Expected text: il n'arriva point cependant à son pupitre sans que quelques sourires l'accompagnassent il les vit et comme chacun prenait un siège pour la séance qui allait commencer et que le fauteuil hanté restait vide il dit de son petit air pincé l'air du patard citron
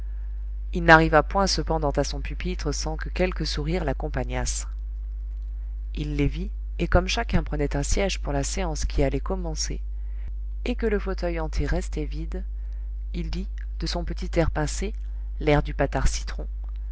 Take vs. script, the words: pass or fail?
pass